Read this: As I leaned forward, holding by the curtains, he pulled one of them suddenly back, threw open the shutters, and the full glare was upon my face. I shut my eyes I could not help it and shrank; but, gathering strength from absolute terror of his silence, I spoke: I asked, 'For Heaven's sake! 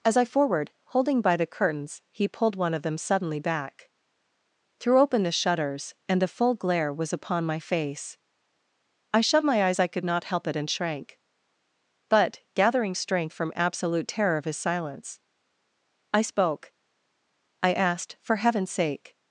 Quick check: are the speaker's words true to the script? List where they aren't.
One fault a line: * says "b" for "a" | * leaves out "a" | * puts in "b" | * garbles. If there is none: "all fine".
* leaves out "leaned"